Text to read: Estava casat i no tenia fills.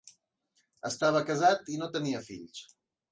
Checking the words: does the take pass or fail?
pass